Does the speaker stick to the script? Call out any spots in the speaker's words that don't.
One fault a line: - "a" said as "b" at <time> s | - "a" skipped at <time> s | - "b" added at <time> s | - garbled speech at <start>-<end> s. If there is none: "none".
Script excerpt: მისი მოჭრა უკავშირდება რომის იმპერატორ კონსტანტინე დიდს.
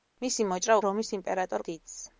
- "უკავშირდება" skipped at 0.8 s
- "კონსტანტინე" skipped at 1.7 s